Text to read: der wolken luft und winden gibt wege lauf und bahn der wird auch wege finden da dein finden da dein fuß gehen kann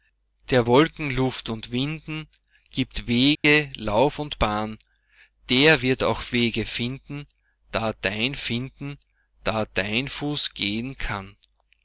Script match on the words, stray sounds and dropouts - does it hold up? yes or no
no